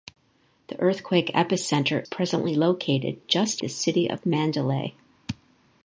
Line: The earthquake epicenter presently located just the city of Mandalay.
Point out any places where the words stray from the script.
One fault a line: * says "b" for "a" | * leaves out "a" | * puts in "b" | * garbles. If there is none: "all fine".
all fine